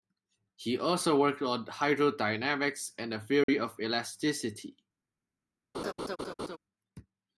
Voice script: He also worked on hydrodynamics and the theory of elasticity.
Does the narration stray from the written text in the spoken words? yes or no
no